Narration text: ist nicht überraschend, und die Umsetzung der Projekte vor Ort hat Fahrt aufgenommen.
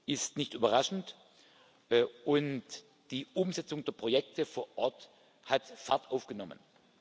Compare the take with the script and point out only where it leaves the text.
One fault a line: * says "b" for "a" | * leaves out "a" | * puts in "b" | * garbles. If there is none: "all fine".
all fine